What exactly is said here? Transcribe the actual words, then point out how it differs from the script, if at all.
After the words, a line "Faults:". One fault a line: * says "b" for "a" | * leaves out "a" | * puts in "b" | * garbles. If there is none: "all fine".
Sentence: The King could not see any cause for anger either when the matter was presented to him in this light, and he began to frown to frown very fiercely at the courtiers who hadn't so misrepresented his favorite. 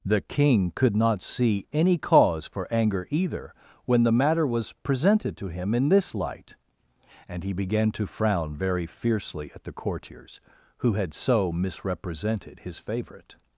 The King could not see any cause for anger either when the matter was presented to him in this light, and he began to frown very fiercely at the courtiers who had so misrepresented his favorite.
Faults:
* leaves out "to frown"
* says "had" for "hadn't"